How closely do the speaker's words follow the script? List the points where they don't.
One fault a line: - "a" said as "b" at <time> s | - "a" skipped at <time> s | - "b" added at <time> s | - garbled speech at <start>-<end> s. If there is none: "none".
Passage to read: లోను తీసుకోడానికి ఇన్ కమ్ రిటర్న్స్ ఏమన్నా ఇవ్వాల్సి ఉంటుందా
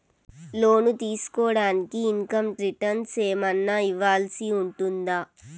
none